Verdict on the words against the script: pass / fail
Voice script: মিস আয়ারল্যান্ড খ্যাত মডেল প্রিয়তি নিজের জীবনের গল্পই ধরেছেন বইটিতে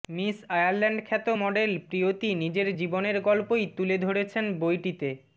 fail